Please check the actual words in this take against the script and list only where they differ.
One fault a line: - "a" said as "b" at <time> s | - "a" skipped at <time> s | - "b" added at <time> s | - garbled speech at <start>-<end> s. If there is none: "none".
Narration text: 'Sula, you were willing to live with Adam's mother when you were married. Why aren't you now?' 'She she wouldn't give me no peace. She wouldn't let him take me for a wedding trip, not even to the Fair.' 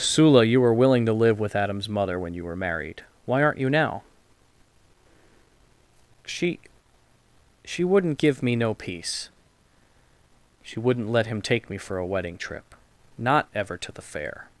- "even" said as "ever" at 13.6 s